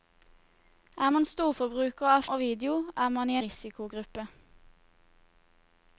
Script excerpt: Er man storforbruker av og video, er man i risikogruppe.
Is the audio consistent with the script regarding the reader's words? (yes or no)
yes